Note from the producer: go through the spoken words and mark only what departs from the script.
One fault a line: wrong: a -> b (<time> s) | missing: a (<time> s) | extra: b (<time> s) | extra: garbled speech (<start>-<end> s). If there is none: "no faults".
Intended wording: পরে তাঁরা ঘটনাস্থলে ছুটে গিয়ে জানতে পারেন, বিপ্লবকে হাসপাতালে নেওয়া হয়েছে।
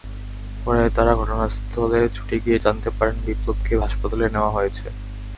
no faults